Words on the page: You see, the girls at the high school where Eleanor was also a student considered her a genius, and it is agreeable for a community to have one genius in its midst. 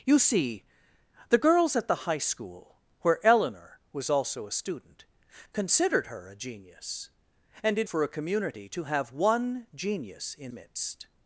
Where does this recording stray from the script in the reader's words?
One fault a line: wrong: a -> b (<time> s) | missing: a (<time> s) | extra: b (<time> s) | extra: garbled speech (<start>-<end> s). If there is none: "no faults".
missing: is agreeable (7.9 s)
missing: its (10.5 s)